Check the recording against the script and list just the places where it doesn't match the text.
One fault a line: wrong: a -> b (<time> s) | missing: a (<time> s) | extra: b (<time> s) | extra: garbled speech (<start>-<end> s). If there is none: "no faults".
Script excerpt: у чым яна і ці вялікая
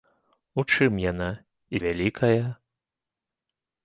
missing: ці (1.8 s)